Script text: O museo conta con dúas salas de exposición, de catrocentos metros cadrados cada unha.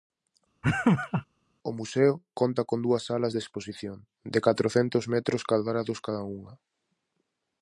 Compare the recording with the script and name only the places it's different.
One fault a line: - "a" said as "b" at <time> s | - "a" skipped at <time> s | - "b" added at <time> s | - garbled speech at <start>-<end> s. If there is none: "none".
none